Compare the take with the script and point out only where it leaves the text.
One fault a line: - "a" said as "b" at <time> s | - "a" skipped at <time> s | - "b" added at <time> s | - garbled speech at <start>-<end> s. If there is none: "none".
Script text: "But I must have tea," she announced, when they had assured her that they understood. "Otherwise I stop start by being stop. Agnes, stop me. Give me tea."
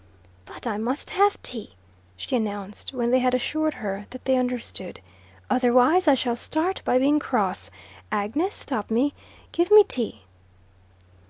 - "stop" said as "shall" at 6.2 s
- "stop" said as "cross" at 7.2 s